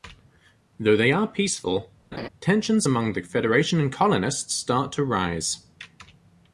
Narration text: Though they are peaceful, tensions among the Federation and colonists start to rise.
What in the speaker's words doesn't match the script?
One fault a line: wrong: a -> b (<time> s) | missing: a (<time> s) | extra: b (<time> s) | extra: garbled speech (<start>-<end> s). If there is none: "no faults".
no faults